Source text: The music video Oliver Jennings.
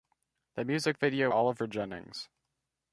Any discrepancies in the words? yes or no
no